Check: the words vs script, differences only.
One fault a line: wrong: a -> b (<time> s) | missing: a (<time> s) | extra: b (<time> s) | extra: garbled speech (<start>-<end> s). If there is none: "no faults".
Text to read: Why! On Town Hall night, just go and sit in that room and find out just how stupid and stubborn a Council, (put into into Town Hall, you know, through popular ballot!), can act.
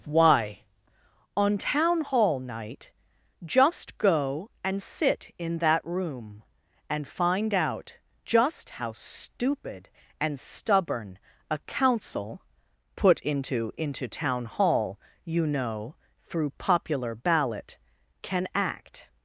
no faults